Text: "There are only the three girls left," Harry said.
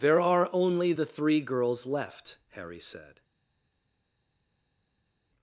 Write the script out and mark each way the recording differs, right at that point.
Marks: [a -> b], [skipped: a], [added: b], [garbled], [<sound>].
"There are only the three girls left," Harry said.